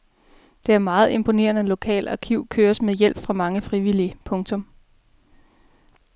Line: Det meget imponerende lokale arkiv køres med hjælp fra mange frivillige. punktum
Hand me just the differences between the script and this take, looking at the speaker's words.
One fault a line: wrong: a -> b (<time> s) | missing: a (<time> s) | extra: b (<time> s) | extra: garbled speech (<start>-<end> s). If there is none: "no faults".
no faults